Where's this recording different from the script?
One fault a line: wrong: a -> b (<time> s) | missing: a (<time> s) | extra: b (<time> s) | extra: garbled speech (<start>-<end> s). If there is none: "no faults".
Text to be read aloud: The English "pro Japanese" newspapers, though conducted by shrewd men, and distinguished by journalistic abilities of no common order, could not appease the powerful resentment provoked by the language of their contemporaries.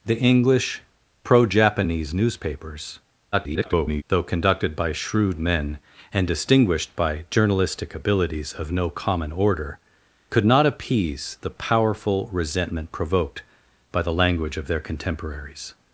extra: garbled speech (3.3-4.0 s)